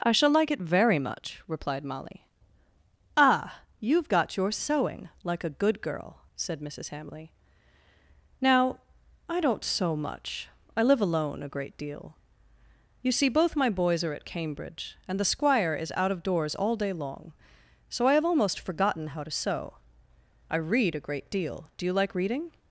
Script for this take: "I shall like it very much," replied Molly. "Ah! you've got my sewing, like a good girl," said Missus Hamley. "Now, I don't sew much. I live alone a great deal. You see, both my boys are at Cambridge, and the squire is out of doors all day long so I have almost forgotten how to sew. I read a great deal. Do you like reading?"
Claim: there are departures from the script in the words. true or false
true